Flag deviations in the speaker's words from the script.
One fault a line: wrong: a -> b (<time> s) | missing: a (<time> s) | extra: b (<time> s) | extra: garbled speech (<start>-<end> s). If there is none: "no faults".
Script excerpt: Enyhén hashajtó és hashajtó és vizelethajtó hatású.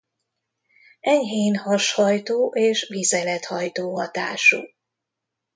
missing: hashajtó és (2.9 s)